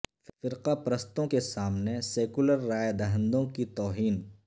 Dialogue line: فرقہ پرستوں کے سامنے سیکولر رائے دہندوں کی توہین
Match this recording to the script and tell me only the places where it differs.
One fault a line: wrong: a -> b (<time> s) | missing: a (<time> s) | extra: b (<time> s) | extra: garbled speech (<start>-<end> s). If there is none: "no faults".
no faults